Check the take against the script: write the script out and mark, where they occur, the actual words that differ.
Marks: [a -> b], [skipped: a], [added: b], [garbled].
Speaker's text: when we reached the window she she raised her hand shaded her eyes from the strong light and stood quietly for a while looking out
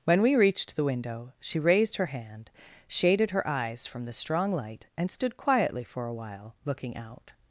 when we reached the window she [skipped: she] raised her hand shaded her eyes from the strong light and stood quietly for a while looking out